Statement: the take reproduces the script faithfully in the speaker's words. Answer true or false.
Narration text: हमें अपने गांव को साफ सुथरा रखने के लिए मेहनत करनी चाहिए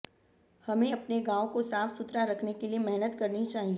true